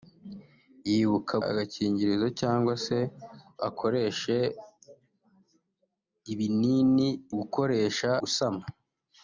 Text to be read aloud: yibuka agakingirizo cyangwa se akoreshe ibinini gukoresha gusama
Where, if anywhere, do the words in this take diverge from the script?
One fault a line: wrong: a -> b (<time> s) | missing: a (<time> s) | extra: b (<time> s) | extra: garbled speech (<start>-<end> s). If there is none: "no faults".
no faults